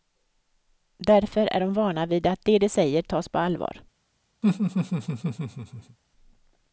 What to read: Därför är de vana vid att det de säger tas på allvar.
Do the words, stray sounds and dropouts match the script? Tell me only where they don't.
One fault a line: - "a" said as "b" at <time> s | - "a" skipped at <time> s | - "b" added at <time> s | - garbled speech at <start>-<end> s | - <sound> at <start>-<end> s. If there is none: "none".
- laugh at 4.4-6.0 s